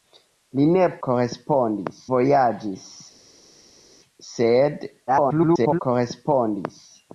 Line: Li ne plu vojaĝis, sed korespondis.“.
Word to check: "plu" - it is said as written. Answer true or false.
false